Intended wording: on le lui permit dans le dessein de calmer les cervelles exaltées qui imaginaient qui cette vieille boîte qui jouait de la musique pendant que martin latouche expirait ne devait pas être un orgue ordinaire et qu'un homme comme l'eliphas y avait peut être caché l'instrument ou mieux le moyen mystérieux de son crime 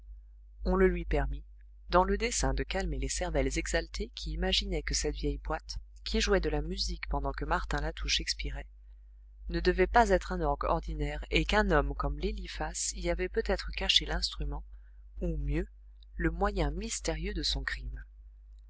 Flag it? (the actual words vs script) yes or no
yes